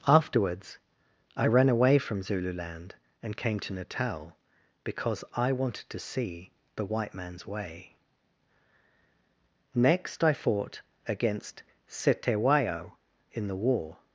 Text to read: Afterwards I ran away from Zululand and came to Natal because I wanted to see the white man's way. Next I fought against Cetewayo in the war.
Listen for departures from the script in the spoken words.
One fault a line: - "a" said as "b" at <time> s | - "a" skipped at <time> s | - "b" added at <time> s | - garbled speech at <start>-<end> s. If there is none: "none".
none